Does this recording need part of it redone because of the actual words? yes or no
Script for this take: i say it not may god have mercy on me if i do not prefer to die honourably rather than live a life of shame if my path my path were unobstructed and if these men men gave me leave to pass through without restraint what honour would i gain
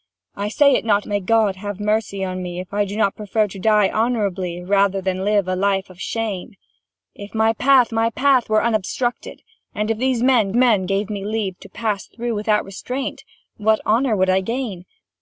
no